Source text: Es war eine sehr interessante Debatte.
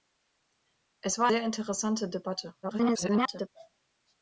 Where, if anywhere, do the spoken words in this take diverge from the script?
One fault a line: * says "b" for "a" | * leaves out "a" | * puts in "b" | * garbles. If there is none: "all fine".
* leaves out "eine"
* garbles